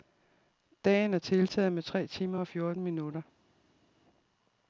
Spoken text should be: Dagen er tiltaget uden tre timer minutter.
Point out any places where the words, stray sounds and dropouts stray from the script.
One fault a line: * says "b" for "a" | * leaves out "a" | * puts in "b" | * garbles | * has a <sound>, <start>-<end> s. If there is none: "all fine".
* says "med" for "uden"
* puts in "og fjorten"